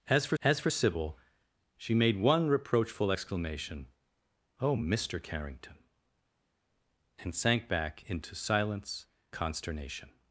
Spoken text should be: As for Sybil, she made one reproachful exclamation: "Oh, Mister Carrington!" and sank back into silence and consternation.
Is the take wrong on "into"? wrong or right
right